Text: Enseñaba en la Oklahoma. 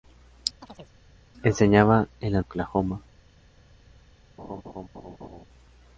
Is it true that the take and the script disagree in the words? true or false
false